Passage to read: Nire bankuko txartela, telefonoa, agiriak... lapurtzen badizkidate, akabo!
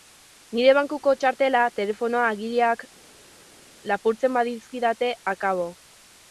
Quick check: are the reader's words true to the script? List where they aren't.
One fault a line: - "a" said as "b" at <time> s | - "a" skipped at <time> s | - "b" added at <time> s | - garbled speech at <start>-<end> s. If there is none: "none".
none